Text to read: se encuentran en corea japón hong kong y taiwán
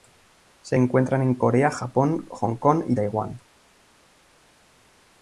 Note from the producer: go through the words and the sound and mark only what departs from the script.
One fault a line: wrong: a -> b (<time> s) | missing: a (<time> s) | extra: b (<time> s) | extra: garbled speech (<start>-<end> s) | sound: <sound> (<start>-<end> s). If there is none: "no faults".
no faults